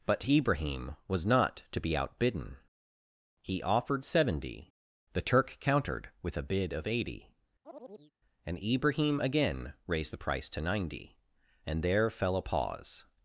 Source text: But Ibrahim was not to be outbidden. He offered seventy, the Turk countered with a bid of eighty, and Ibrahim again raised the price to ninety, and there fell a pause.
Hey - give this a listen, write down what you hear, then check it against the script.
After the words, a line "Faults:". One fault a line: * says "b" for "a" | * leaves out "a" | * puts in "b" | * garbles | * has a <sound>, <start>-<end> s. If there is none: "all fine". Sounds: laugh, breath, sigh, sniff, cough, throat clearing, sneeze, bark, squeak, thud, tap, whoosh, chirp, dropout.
But Ibrahim was not to be outbidden. He offered seventy, the Turk countered with a bid of eighty, and Ibrahim again raised the price to ninety, and there fell a pause.
Faults:
* has a chirp, 7.6-8.1 s